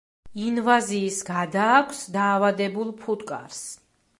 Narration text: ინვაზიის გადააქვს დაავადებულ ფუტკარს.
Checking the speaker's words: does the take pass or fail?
pass